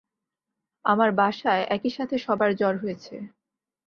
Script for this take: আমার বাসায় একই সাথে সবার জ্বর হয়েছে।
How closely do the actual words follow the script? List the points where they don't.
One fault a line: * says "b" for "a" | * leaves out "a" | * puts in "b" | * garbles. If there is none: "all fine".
all fine